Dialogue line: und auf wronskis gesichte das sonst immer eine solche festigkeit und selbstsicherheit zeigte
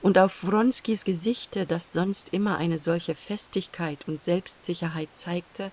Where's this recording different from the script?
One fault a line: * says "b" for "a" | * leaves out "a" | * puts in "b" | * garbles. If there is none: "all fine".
all fine